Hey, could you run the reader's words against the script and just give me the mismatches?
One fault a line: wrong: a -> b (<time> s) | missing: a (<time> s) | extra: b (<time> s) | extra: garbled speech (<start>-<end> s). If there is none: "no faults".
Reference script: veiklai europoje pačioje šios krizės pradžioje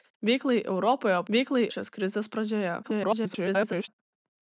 wrong: pačioje -> veiklai (1.4 s)
extra: garbled speech (2.8-3.9 s)